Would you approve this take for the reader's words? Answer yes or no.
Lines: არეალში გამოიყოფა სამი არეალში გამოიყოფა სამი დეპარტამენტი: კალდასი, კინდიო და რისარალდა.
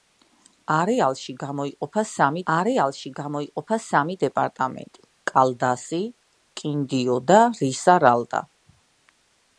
yes